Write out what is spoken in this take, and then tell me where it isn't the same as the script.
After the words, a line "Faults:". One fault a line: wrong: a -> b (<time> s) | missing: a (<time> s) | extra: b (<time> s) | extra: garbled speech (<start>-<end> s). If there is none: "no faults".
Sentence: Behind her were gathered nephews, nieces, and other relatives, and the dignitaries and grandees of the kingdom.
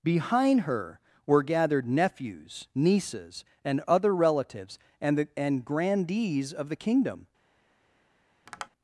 Behind her were gathered nephews, nieces, and other relatives, and the and grandees of the kingdom.
Faults:
missing: dignitaries (5.3 s)